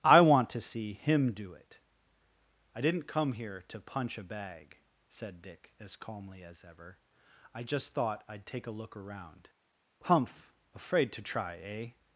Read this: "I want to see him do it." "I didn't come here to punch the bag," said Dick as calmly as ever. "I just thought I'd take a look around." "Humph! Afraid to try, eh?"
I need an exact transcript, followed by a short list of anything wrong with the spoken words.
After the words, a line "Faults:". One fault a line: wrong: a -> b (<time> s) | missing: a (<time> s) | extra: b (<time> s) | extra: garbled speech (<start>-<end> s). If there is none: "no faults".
"I want to see him do it." "I didn't come here to punch a bag," said Dick as calmly as ever. "I just thought I'd take a look around." "Humph! Afraid to try, eh?"
Faults:
wrong: the -> a (4.2 s)